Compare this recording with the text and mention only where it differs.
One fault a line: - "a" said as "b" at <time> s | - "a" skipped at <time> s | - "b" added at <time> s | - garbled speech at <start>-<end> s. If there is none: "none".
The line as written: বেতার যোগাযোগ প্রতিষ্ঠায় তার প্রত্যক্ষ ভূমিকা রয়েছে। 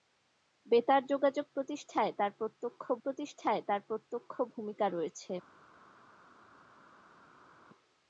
- "প্রতিষ্ঠায় তার প্রত্যক্ষ" added at 3.0 s